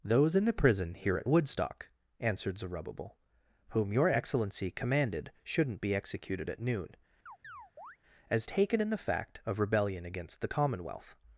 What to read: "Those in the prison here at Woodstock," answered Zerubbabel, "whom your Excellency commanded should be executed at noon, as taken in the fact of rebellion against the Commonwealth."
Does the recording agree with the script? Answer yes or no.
no